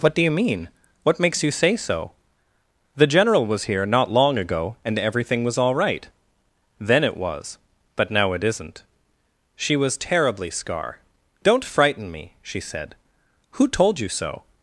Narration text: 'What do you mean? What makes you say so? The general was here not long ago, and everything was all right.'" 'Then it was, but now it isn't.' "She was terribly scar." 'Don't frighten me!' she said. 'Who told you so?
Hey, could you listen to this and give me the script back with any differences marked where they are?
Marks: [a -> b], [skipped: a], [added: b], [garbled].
'What do you mean? What makes you say so? The general was here not long ago, and everything was all right.'" 'Then it was, but now it isn't.' "She was terribly scar." 'Don't frighten me!' she said. 'Who told you so?